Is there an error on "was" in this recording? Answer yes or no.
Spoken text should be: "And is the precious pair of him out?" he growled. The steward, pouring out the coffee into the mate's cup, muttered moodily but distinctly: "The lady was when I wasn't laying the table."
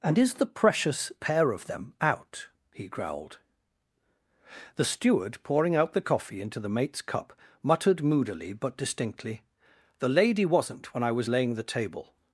yes